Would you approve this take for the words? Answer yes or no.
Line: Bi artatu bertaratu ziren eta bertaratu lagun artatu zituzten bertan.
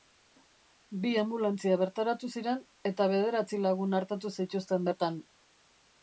no